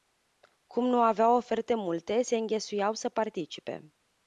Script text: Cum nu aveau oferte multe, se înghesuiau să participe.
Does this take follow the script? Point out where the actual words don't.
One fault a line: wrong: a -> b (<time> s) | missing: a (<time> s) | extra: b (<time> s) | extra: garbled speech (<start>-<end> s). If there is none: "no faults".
no faults